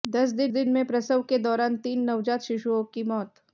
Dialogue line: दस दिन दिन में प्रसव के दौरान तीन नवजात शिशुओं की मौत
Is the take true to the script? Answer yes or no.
yes